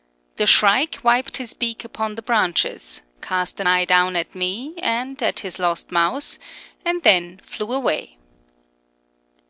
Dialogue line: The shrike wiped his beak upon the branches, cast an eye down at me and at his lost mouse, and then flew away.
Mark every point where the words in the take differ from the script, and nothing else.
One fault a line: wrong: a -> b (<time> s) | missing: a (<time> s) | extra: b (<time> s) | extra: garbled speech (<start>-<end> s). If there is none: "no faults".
no faults